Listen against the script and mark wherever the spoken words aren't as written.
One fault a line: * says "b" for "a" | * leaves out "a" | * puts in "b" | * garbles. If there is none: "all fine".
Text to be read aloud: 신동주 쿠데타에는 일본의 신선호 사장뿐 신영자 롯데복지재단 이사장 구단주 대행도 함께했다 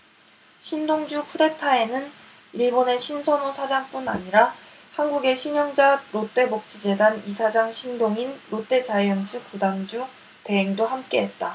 * puts in "아니라 한국의"
* puts in "신동인 롯데자이언츠"